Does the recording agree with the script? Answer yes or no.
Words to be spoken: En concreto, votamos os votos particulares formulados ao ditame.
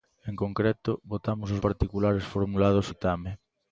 no